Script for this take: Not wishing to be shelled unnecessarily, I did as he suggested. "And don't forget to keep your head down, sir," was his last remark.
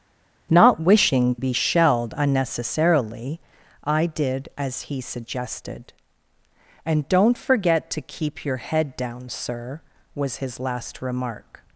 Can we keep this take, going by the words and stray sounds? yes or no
no